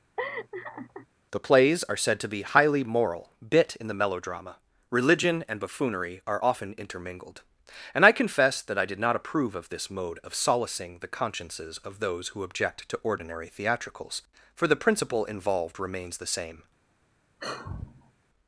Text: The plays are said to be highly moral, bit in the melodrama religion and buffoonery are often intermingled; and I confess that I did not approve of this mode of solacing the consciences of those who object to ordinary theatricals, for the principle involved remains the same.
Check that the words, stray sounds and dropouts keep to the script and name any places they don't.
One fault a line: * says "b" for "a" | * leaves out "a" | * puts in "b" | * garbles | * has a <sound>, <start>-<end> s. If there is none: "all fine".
* has a laugh, 0.2-1.1 s
* has a sigh, 17.4-18.1 s